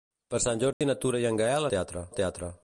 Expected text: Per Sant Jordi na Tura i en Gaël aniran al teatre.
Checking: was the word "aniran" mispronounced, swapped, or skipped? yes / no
yes